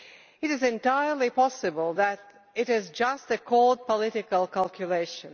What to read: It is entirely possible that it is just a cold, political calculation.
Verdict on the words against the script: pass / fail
pass